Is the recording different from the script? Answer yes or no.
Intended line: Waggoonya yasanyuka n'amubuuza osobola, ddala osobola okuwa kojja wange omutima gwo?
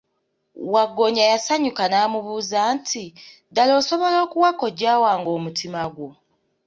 yes